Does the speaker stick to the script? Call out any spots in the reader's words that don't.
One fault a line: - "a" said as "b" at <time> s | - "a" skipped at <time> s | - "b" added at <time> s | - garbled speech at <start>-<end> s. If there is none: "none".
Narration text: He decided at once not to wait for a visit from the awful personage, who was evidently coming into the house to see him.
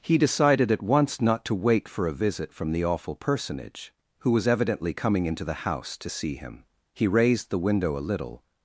- "He raised the window a little" added at 6.9 s